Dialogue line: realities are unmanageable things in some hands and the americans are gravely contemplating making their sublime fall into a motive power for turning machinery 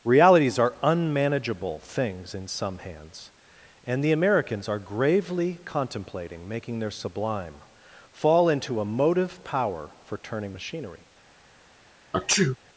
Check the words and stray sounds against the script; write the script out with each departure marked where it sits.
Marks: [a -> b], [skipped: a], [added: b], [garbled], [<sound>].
realities are unmanageable things in some hands and the americans are gravely contemplating making their sublime fall into a motive power for turning machinery [sneeze]